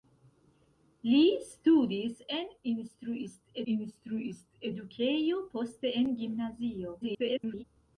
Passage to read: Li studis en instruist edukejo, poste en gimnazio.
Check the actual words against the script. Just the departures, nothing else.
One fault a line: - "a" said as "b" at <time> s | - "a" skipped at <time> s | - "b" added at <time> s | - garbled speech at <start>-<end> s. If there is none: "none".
- "instruist" added at 3.7 s
- garbled speech at 7.0-7.6 s